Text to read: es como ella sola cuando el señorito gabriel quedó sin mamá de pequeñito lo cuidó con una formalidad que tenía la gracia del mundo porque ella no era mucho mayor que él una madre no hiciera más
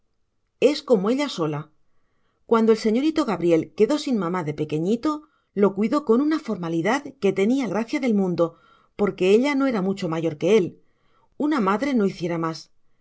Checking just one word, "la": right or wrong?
wrong